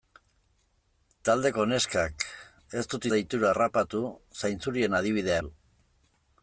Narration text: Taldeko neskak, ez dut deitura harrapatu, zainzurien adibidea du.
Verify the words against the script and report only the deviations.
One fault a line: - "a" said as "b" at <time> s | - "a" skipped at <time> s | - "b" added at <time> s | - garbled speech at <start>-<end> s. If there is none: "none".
none